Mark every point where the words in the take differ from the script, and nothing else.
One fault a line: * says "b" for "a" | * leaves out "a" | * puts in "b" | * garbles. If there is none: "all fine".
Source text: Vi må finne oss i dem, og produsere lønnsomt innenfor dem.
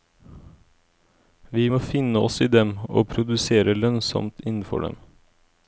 all fine